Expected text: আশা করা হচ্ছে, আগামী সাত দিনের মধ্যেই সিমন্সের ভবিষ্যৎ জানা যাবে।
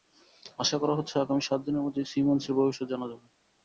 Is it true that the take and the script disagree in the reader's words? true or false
false